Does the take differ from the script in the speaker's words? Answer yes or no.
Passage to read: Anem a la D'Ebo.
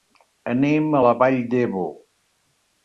yes